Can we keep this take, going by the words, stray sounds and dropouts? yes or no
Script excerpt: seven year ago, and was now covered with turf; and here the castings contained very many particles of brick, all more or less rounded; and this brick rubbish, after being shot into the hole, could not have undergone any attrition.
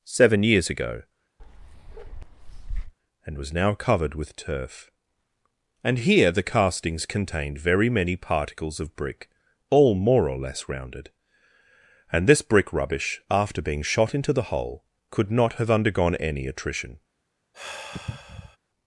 no